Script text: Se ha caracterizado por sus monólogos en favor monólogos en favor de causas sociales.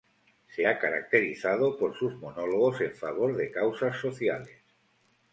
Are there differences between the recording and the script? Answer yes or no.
yes